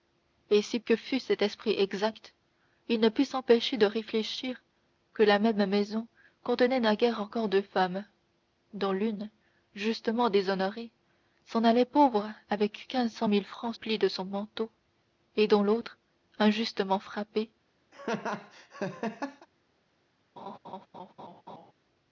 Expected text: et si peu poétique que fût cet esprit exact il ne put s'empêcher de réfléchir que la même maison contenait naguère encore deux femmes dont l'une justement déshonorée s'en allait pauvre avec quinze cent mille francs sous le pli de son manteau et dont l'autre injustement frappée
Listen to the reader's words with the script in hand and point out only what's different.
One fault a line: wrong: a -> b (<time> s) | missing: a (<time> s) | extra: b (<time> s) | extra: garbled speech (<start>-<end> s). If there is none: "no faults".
missing: peu poétique (0.8 s)
missing: sous le (13.7 s)